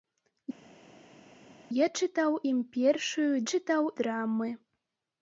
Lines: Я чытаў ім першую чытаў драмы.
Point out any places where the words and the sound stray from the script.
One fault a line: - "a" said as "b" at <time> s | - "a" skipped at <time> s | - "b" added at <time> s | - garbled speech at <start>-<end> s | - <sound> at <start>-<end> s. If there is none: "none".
none